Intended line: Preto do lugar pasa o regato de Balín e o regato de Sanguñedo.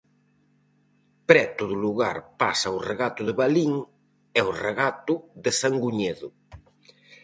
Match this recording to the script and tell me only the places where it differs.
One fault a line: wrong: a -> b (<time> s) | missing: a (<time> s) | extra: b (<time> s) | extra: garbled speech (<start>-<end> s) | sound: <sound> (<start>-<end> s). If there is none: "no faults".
no faults